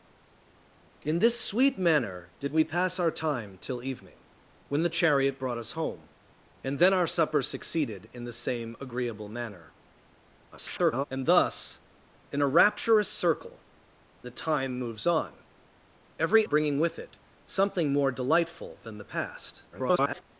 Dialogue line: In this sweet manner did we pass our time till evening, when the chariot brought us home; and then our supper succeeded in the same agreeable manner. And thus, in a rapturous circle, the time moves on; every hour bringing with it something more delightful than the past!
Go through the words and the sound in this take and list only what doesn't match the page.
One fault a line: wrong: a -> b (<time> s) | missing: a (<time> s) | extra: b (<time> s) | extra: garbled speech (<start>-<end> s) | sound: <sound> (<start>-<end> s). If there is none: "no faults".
extra: garbled speech (10.5-11.1 s)
missing: hour (16.5 s)
extra: garbled speech (19.7-20.2 s)